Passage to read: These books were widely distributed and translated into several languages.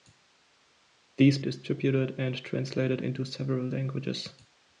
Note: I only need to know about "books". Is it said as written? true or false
false